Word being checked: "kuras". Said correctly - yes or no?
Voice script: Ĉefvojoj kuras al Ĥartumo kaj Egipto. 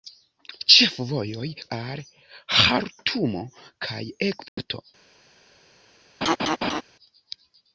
no